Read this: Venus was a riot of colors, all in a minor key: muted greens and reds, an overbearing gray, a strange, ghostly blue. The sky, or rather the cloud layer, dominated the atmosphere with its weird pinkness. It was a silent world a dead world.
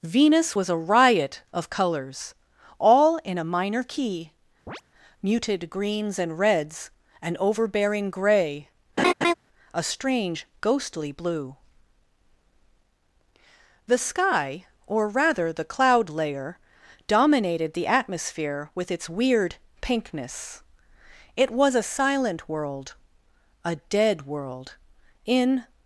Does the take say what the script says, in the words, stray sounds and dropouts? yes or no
no